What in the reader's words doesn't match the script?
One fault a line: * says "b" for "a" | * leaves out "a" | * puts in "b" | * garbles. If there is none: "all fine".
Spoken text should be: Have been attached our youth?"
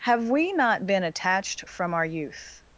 * puts in "we not"
* puts in "from"